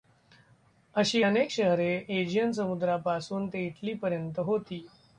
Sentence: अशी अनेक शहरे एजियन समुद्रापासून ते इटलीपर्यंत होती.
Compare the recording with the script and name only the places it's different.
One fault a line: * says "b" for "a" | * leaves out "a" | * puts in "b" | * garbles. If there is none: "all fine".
all fine